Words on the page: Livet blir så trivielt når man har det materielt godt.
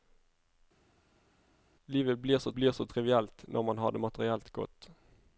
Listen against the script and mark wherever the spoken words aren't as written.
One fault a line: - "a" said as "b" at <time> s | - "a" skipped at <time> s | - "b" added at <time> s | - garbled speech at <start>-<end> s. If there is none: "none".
- "blir så" added at 2.5 s